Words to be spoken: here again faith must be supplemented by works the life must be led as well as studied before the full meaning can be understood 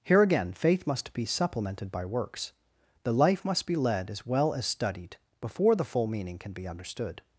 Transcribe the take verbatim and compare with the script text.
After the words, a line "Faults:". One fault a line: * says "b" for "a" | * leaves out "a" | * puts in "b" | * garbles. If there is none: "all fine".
here again faith must be supplemented by works the life must be led as well as studied before the full meaning can be understood
Faults:
all fine